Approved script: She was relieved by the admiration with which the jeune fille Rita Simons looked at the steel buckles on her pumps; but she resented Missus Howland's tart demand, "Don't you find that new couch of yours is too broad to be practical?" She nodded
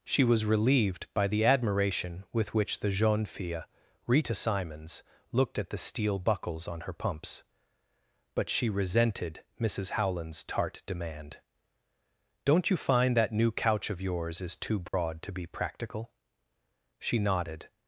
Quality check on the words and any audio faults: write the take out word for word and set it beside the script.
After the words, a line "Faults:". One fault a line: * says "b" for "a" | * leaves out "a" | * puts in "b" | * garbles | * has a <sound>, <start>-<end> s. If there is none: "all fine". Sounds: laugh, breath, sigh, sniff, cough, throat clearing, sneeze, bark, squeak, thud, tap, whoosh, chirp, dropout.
She was relieved by the admiration with which the jeune fille Rita Simons looked at the steel buckles on her pumps; but she resented Missus Howland's tart demand, "Don't you find that new couch of yours is too broad to be practical?" She nodded
Faults:
* has a dropout, 14.9-14.9 s